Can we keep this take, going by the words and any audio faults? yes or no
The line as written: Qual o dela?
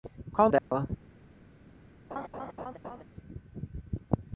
no